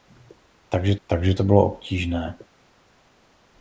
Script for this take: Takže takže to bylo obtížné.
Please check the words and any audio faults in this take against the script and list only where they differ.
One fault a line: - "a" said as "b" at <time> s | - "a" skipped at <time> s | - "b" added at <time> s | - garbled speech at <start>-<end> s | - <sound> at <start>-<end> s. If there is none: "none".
none